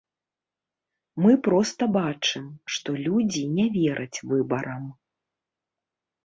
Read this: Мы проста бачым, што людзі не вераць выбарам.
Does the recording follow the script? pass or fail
pass